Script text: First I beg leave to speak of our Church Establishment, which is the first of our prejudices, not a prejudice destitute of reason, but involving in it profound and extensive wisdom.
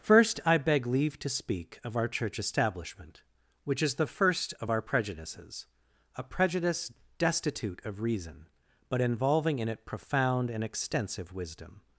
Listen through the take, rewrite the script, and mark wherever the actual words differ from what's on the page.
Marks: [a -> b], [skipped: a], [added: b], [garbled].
First I beg leave to speak of our Church Establishment, which is the first of our prejudices, [skipped: not] a prejudice destitute of reason, but involving in it profound and extensive wisdom.